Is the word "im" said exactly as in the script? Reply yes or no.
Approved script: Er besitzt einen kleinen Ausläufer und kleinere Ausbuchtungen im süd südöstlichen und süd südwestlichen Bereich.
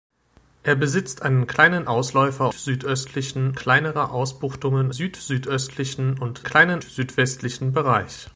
no